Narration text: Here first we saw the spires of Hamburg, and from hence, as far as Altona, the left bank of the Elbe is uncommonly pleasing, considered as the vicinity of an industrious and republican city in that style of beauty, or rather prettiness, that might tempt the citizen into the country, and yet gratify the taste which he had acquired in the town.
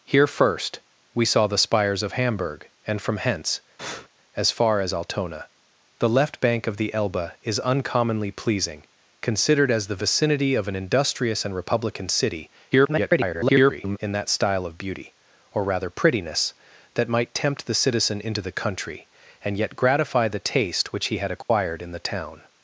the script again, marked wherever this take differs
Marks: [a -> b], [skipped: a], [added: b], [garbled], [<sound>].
Here first we saw the spires of Hamburg, and from hence, [breath] as far as Altona, the left bank of the Elbe is uncommonly pleasing, considered as the vicinity of an industrious and republican city [garbled] in that style of beauty, or rather prettiness, that might tempt the citizen into the country, and yet gratify the taste which he had acquired [dropout] in the town.